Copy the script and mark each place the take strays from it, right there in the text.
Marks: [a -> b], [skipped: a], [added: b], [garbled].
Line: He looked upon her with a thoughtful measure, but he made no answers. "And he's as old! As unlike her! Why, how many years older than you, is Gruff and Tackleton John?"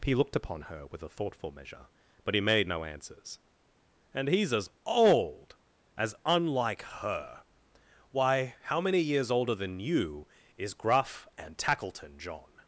He looked upon her with a thoughtful measure, but he made no answers. "And he's as old! As unlike her! Why, how many years older than you, is Gruff and Tackleton John?"